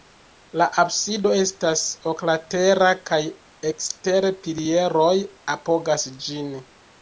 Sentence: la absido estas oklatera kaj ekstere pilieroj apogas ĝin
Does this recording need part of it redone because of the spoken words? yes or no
no